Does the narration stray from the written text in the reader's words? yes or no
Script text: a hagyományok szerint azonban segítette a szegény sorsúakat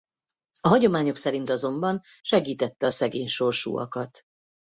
no